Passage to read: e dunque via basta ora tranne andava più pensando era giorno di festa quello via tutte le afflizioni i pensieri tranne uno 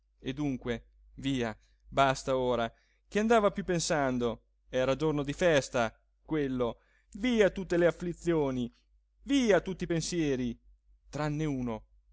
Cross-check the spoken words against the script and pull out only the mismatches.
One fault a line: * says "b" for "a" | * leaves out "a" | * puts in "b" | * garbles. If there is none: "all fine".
* says "che" for "tranne"
* puts in "via tutti"